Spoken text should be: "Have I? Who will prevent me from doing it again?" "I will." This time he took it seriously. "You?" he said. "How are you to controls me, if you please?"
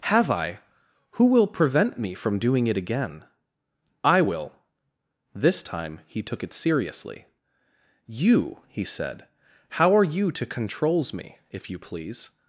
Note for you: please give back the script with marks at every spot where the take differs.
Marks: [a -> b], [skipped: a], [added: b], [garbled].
"Have I? Who will prevent me from doing it again?" "I will." This time he took it seriously. "You?" he said. "How are you to controls me, if you please?"